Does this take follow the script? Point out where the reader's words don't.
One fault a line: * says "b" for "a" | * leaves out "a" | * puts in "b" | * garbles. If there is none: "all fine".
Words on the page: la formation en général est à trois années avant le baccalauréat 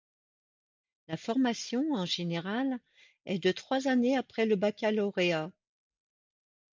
* says "de" for "à"
* says "après" for "avant"